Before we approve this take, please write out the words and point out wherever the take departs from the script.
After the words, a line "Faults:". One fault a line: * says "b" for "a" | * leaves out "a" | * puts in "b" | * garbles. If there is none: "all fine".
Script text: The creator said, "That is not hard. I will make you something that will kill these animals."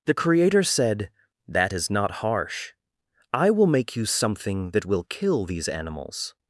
The creator said, "That is not harsh. I will make you something that will kill these animals."
Faults:
* says "harsh" for "hard"